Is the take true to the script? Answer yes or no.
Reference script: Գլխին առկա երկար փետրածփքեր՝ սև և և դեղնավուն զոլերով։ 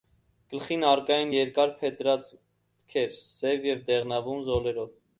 no